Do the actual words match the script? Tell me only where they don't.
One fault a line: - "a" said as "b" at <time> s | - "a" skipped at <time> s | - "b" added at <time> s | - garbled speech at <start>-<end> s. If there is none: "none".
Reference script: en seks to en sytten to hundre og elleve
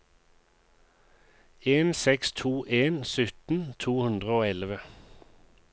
none